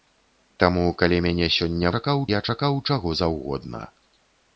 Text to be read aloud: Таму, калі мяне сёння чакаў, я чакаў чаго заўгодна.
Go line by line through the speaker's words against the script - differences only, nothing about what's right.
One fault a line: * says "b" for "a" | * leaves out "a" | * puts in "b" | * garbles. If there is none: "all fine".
all fine